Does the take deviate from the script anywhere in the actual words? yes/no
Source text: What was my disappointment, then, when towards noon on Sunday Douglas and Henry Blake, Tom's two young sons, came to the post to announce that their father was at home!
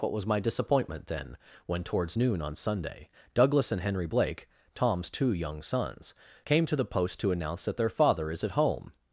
yes